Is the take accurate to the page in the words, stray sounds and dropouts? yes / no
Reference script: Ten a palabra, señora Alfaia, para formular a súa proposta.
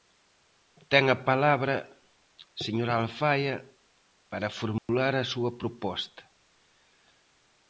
no